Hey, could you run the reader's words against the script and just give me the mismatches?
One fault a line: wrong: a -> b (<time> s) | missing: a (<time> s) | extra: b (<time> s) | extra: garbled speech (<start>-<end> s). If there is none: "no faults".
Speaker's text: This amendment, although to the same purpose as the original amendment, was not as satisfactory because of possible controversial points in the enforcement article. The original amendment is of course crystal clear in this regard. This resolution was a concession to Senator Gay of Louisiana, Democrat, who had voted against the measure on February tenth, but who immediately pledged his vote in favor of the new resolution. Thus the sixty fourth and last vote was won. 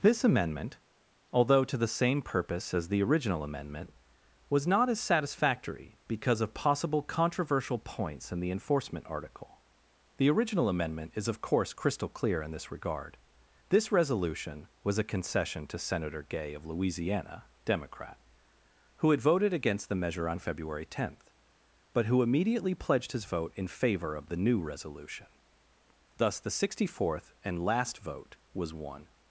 no faults